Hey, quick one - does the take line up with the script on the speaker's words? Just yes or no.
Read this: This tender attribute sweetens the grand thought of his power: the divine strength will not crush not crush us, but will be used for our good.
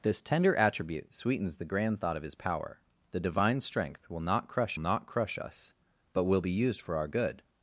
yes